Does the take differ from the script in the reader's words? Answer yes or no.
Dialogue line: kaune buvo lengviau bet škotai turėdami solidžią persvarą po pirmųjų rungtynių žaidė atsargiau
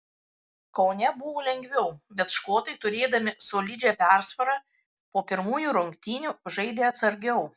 no